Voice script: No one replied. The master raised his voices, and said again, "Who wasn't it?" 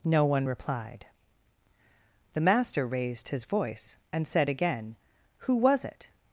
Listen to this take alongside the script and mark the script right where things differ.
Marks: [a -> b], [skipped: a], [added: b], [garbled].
No one replied. The master raised his [voices, -> voice] and said again, "Who [wasn't -> was] it?"